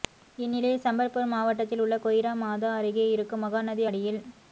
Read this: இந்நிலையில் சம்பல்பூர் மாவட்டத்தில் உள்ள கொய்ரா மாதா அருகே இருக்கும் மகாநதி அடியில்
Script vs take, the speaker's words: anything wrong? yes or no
no